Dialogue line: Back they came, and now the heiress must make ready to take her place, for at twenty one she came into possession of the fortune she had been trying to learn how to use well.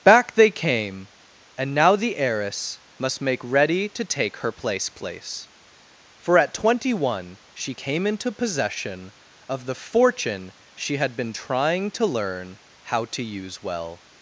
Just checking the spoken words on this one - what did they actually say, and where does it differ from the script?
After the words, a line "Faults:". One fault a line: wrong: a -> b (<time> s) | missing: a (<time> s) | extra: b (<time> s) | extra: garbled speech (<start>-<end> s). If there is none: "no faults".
Back they came, and now the heiress must make ready to take her place place, for at twenty one she came into possession of the fortune she had been trying to learn how to use well.
Faults:
extra: place (4.9 s)